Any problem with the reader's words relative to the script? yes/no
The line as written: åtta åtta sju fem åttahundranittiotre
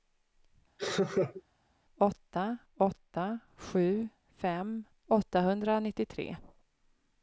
no